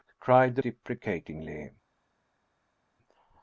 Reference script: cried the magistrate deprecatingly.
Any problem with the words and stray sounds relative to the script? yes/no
yes